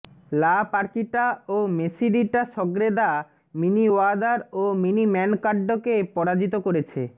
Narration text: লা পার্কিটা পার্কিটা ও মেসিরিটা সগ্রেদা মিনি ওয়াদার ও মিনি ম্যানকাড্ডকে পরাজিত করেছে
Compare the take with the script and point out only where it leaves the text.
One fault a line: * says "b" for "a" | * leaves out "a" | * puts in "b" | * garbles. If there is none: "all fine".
* leaves out "পার্কিটা"